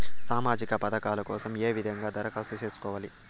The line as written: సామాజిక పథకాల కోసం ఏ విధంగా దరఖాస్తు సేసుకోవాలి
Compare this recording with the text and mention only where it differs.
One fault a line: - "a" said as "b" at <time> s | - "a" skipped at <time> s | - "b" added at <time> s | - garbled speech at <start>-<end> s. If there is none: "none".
none